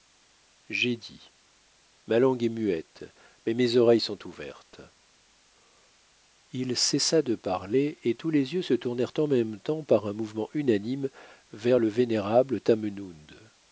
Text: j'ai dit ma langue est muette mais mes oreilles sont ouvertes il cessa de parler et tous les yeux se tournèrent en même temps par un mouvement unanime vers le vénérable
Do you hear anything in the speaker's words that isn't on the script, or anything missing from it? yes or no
no